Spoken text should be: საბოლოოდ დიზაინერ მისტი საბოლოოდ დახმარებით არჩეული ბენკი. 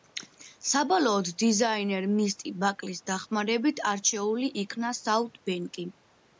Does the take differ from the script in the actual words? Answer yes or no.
yes